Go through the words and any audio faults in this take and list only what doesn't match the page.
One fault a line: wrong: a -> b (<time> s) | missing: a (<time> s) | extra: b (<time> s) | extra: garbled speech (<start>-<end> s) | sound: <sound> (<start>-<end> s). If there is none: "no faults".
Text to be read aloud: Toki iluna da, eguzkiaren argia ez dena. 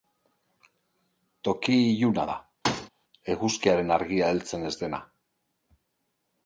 sound: thud (2.6-2.9 s)
extra: heltzen (4.3 s)